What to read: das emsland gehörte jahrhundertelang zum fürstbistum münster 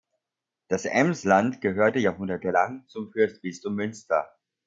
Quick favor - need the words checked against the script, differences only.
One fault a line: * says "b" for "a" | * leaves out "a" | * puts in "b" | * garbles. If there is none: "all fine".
all fine